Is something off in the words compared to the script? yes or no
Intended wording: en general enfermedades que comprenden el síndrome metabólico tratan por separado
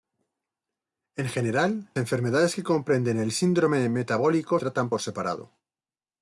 no